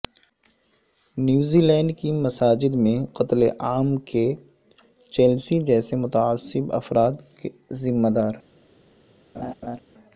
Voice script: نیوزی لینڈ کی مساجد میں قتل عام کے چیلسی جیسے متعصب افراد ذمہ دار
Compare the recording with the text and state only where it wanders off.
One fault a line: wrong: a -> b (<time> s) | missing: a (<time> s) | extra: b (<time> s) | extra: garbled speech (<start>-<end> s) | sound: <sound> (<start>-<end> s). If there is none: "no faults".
sound: laugh (9.3-9.8 s)